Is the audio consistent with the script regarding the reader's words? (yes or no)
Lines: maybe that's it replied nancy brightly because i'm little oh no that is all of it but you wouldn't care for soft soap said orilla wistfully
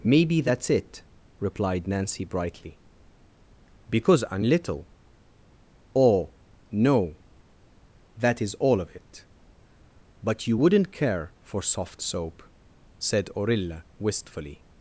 yes